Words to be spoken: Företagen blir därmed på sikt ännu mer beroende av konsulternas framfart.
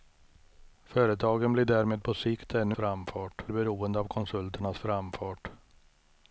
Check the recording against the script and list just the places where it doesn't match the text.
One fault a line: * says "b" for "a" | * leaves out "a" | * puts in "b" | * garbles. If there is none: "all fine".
* says "framfart" for "mer"